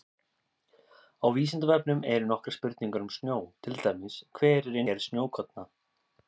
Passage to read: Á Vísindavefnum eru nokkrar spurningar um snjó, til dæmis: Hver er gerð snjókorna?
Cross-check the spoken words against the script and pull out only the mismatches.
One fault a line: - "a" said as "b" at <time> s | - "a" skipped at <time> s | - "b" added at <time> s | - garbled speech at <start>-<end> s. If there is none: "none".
none